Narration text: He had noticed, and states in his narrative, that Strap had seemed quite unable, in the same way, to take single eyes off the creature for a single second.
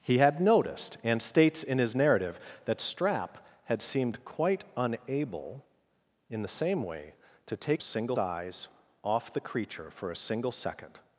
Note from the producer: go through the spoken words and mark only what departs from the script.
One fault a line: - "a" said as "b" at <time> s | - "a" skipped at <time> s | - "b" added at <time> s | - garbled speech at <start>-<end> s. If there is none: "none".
none